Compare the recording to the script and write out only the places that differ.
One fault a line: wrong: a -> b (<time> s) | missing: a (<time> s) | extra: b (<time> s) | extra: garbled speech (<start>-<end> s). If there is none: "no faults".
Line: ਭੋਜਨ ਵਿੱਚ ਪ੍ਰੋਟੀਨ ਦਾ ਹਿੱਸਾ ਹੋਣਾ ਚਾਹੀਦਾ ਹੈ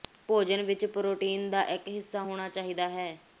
extra: ਇੱਕ (1.6 s)